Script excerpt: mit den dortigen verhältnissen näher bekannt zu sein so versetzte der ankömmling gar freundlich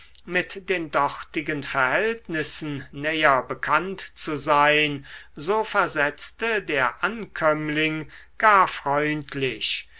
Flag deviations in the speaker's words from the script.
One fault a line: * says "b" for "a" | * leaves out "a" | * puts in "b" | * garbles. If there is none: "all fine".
all fine